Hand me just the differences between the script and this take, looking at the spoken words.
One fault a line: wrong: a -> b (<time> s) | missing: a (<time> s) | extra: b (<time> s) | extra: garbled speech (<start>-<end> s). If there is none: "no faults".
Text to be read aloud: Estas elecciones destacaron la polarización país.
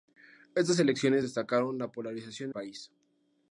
no faults